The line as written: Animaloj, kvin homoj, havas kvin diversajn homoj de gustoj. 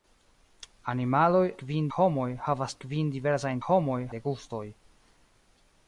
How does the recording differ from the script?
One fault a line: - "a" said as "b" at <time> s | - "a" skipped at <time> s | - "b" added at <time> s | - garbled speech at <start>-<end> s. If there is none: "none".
none